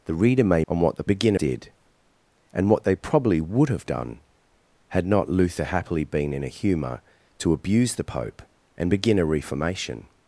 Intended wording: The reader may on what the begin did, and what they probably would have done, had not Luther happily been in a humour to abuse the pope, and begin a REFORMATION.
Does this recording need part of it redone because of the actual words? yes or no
no